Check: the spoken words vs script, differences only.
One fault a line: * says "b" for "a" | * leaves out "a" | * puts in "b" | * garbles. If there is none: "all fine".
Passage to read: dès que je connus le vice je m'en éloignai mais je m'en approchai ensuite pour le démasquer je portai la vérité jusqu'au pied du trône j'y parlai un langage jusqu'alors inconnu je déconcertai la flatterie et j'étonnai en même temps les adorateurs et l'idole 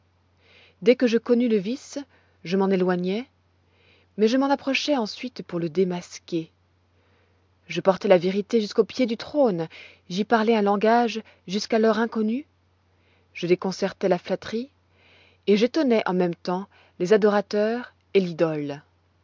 all fine